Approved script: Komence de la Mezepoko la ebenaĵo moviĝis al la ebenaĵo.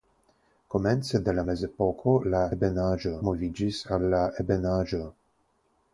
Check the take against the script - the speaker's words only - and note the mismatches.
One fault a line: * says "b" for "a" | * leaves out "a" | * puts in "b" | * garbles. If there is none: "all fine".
all fine